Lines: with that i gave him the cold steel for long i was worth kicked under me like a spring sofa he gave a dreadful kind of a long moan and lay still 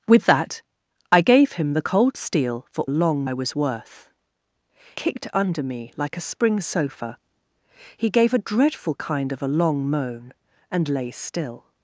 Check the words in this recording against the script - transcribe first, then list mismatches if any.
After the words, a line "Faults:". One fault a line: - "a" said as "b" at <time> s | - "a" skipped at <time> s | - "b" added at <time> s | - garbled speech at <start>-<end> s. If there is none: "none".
with that i gave him the cold steel for long i was worth kicked under me like a spring sofa he gave a dreadful kind of a long moan and lay still
Faults:
none